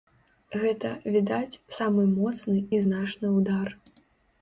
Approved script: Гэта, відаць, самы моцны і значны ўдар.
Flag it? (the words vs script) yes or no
no